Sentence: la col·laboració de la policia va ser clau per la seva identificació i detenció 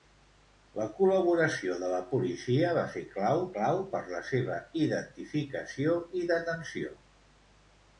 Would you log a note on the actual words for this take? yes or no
yes